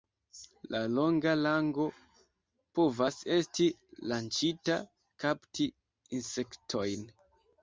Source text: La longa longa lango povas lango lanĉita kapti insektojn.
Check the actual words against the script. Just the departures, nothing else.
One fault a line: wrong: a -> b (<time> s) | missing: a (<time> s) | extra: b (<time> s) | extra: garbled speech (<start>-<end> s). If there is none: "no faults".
missing: longa (1.3 s)
wrong: lango -> esti (3.4 s)